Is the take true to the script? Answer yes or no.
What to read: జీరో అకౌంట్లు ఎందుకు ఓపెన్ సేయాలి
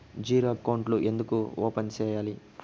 yes